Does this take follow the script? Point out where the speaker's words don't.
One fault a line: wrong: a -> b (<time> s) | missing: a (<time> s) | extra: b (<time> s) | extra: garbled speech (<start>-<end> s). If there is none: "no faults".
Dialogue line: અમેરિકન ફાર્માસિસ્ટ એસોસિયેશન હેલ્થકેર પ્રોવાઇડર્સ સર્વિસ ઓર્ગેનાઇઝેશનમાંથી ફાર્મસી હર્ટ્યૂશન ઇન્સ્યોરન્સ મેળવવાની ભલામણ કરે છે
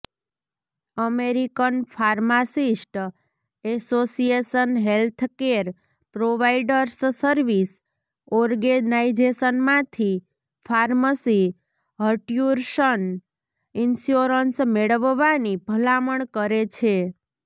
no faults